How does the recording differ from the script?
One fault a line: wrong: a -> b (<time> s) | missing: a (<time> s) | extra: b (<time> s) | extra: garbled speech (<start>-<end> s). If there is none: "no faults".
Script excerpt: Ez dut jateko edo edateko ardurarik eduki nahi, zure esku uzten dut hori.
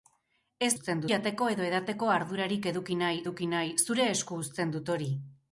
wrong: dut -> uzten (0.7 s)
extra: eduki nahi (3.2 s)